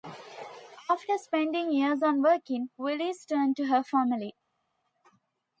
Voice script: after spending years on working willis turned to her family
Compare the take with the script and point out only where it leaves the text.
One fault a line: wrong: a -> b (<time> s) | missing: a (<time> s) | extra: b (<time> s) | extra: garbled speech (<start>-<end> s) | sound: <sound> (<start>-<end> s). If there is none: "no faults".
no faults